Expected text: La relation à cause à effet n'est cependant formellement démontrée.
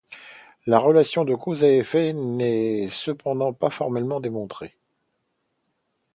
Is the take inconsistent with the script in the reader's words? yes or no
yes